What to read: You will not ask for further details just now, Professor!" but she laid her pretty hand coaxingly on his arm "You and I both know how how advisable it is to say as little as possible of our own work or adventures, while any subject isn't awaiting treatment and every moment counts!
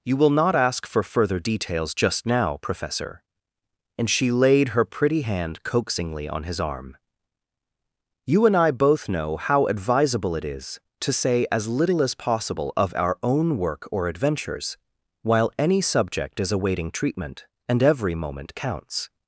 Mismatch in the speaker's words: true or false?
true